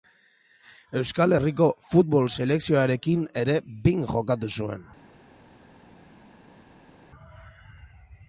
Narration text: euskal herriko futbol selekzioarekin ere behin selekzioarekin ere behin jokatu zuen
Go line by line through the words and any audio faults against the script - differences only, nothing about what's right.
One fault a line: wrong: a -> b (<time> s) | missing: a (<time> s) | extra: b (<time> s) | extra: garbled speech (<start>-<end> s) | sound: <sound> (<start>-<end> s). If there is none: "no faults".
missing: selekzioarekin ere behin (4.0 s)